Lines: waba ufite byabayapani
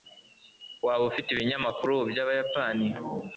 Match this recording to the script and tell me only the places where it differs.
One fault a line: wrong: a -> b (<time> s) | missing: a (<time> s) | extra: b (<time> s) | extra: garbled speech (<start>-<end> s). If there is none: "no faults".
extra: ibinyamakuru (1.3 s)